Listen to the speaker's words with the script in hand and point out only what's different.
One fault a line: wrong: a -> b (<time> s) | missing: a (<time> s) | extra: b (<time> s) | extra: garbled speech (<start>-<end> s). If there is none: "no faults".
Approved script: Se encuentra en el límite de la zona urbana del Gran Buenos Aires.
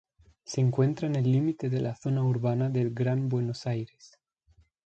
no faults